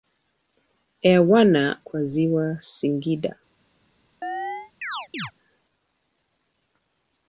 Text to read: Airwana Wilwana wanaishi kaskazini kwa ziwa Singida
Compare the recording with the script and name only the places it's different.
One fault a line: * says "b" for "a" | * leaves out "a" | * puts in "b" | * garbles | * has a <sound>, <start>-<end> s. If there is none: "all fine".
* leaves out "Wilwana wanaishi kaskazini"
* has a chirp, 4.2-5.3 s